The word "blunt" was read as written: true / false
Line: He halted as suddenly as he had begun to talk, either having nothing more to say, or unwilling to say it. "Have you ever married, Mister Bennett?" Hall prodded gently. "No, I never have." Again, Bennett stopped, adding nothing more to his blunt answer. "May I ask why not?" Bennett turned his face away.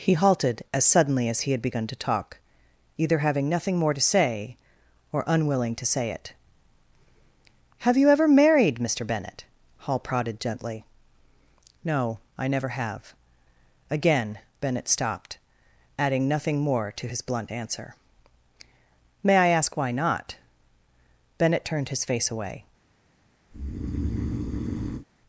true